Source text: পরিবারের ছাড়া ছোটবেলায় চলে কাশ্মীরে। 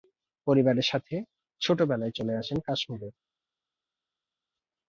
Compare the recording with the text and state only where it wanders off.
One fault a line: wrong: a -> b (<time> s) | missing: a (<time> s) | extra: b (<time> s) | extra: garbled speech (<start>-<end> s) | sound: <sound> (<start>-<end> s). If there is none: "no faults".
wrong: ছাড়া -> সাথে (0.9 s)
extra: আসেন (2.4 s)